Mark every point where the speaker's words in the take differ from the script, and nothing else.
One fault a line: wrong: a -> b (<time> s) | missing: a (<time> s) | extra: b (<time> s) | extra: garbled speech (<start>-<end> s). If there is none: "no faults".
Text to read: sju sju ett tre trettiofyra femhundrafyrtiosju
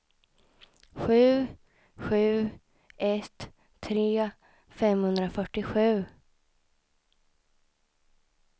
missing: trettiofyra (4.3 s)